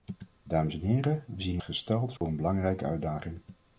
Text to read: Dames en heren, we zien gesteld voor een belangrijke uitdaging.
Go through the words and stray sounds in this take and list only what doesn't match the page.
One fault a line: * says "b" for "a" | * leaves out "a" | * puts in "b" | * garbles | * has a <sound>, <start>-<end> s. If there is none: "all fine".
* has a dropout, 2.2-2.2 s